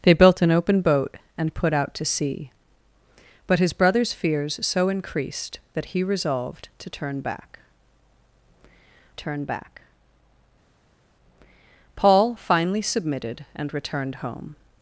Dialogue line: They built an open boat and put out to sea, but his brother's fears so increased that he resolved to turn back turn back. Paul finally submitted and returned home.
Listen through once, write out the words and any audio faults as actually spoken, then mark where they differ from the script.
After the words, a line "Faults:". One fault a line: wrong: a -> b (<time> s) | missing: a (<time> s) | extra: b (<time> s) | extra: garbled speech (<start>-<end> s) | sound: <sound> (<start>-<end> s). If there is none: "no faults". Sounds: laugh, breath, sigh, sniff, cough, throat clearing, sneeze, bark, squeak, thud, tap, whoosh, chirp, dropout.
They built an open boat and put out to sea, but his brother's fears so increased that he resolved to turn back turn back. Paul finally submitted and returned home.
Faults:
no faults